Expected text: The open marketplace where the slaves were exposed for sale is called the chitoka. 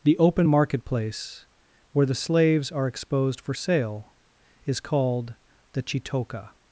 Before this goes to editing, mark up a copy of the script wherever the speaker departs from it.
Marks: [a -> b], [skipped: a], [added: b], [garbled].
The open marketplace where the slaves [were -> are] exposed for sale is called the chitoka.